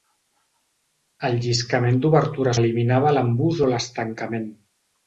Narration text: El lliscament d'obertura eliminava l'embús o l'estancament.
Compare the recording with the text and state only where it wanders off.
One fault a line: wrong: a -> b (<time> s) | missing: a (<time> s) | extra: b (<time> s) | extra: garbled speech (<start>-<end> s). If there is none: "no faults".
no faults